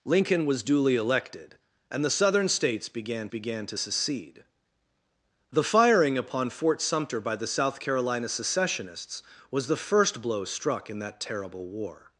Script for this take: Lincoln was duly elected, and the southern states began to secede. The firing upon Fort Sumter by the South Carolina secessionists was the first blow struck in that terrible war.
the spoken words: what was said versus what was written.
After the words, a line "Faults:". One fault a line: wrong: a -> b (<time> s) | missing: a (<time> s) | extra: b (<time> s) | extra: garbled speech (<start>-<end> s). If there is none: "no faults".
Lincoln was duly elected, and the southern states began began to secede. The firing upon Fort Sumter by the South Carolina secessionists was the first blow struck in that terrible war.
Faults:
extra: began (3.3 s)